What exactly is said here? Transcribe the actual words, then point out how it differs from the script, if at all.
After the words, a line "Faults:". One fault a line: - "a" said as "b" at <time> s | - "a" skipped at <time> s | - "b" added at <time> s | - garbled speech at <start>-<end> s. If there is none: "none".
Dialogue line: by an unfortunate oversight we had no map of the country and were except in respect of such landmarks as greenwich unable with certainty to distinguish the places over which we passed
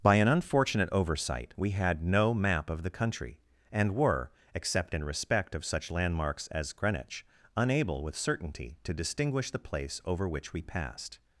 by an unfortunate oversight we had no map of the country and were except in respect of such landmarks as greenwich unable with certainty to distinguish the place over which we passed
Faults:
- "places" said as "place" at 9.6 s